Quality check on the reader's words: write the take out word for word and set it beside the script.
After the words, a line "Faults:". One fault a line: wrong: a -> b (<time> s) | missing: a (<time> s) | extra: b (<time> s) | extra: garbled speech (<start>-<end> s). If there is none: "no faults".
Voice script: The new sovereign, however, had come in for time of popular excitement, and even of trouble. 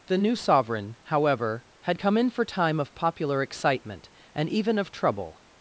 The new sovereign, however, had come in for time of popular excitement, and even of trouble.
Faults:
no faults